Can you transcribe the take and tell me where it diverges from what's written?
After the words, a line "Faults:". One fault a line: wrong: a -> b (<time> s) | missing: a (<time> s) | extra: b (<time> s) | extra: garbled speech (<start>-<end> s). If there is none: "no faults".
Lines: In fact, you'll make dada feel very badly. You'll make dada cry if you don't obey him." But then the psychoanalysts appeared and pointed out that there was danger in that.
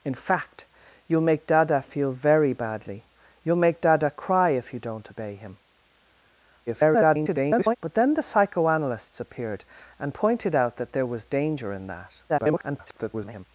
In fact, you'll make dada feel very badly. You'll make dada cry if you don't obey him." [garbled] But then the psychoanalysts appeared and pointed out that there was danger in that. [garbled]
Faults:
extra: garbled speech (6.7-7.8 s)
extra: garbled speech (12.3-13.5 s)